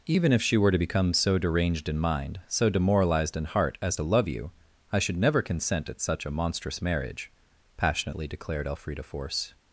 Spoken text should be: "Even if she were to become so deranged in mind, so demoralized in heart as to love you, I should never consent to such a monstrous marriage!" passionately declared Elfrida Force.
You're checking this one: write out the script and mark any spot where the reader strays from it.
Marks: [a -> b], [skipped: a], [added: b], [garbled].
"Even if she were to become so deranged in mind, so demoralized in heart as to love you, I should never consent [to -> at] such a monstrous marriage!" passionately declared Elfrida Force.